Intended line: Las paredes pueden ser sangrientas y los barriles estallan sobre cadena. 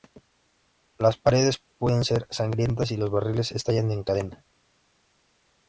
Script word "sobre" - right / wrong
wrong